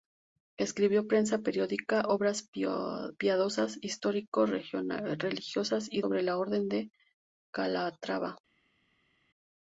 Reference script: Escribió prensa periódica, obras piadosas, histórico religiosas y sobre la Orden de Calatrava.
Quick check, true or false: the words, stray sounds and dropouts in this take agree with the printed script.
true